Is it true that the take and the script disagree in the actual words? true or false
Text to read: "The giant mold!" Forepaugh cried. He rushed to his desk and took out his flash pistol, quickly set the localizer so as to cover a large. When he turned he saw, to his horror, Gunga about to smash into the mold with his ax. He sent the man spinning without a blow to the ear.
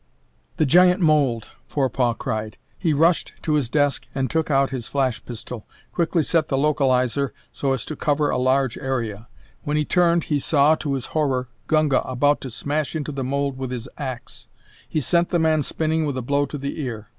true